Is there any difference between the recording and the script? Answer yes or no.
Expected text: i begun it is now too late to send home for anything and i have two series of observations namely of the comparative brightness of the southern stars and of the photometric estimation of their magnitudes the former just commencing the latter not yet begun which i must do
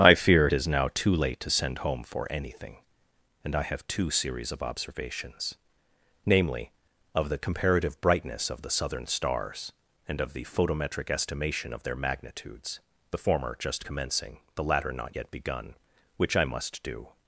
yes